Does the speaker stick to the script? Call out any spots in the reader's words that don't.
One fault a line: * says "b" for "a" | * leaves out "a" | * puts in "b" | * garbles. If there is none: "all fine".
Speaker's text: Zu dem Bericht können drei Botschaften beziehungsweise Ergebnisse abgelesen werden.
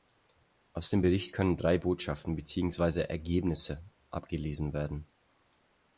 * says "Aus" for "Zu"